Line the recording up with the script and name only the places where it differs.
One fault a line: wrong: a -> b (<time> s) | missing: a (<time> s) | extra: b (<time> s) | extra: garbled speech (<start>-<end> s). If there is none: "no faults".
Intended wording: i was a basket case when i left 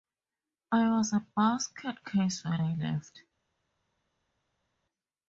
no faults